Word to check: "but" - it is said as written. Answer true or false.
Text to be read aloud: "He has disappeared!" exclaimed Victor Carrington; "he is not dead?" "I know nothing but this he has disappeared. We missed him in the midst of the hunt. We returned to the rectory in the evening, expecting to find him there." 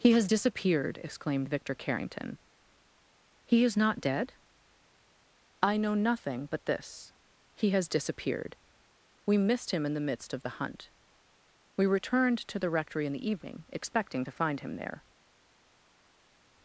true